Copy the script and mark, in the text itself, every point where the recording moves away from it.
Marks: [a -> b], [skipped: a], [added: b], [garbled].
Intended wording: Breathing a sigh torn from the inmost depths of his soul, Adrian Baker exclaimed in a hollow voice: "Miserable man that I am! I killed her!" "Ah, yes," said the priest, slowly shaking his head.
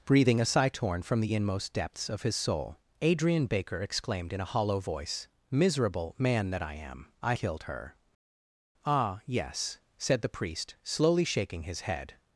Breathing a sigh torn from the inmost depths of his soul, Adrian Baker exclaimed in a hollow voice: "Miserable man that I am! I killed her!" "Ah, yes," said the priest, slowly shaking his head.